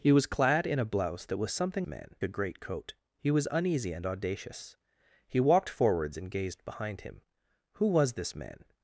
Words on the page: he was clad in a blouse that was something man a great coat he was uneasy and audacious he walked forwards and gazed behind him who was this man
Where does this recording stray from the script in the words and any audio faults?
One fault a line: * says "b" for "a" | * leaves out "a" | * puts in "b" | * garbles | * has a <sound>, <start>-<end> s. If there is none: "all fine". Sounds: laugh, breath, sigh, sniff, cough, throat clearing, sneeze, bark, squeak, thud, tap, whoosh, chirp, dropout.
all fine